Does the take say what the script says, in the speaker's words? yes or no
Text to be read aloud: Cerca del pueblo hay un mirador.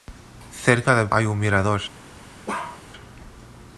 no